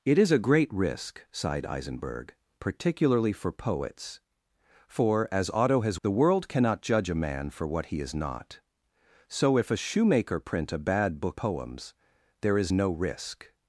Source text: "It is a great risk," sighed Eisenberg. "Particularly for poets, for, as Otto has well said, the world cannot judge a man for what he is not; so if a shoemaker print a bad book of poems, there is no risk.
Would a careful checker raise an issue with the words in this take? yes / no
yes